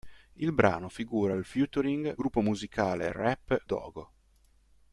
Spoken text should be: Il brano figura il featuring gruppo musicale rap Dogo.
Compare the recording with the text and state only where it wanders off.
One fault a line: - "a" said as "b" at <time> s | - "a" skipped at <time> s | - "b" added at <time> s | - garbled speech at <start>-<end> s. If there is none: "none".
none